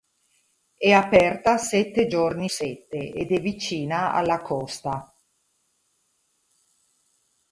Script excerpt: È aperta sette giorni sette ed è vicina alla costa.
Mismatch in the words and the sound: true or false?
false